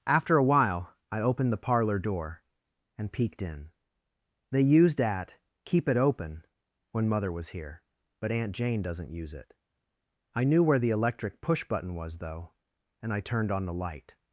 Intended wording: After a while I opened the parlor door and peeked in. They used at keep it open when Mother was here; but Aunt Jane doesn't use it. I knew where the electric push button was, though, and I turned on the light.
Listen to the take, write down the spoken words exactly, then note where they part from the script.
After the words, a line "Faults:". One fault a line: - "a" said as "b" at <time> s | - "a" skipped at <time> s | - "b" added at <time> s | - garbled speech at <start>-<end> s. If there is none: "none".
After a while I opened the parlor door and peeked in. They used at keep it open when Mother was here; but Aunt Jane doesn't use it. I knew where the electric push button was, though, and I turned on the light.
Faults:
none